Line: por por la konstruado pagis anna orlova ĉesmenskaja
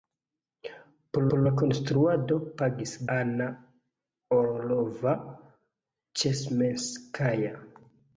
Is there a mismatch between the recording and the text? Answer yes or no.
no